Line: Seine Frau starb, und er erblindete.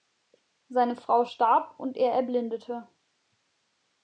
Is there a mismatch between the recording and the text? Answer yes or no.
no